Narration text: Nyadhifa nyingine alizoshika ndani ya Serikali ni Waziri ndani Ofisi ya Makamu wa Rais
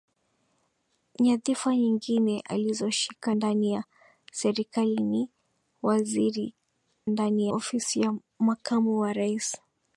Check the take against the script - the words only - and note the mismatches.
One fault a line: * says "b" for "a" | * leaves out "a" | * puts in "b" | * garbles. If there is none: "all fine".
all fine